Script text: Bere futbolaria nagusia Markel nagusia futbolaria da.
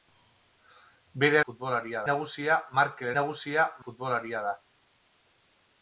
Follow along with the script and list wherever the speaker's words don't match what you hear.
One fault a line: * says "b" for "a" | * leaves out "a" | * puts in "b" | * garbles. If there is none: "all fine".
all fine